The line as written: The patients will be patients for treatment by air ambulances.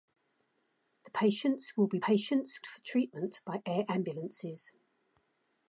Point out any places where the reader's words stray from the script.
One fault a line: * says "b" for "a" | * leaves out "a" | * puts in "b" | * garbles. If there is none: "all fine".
all fine